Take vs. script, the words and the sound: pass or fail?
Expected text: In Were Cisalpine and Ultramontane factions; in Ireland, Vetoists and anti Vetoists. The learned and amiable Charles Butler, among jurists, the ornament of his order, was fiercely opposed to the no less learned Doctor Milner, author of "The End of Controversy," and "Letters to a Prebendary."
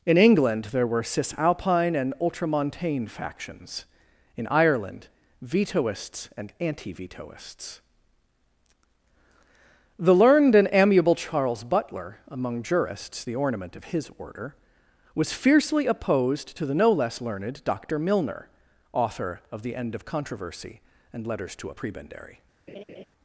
fail